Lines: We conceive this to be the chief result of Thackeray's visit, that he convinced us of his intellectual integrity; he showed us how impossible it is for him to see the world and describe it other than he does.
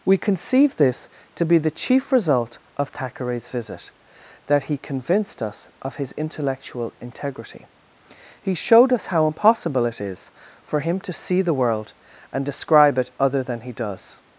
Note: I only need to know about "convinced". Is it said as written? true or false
true